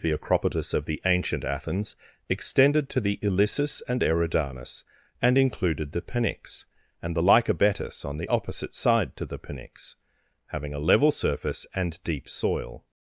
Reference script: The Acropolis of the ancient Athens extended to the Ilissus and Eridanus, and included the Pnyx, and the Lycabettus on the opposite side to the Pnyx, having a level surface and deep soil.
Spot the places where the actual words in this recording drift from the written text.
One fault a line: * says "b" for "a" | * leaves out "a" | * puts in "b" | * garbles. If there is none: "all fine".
all fine